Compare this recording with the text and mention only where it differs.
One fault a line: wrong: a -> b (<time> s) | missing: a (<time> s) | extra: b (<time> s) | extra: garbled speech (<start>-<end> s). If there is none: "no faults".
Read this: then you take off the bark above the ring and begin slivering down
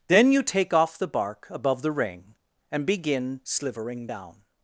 no faults